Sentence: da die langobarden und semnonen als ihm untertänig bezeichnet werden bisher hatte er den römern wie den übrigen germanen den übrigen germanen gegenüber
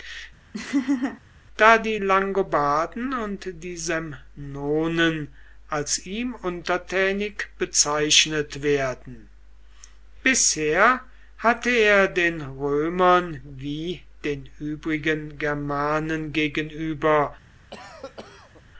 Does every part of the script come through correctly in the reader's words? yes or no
no